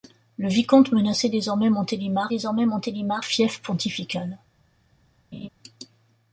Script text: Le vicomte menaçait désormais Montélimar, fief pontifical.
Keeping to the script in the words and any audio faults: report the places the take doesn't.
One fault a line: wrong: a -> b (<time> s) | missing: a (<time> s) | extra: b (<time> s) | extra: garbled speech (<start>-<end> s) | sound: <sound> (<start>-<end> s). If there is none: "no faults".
extra: désormais Montélimar (2.3 s)
sound: laugh (5.3-5.5 s)